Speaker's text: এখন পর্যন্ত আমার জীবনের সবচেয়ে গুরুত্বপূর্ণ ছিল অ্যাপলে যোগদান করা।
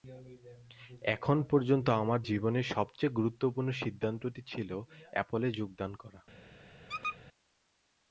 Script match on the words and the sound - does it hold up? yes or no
no